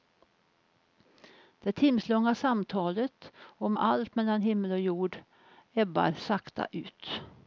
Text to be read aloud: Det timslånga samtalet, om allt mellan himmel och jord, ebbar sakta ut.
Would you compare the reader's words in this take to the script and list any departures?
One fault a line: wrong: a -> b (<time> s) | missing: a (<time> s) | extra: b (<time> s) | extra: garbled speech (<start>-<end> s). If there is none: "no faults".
no faults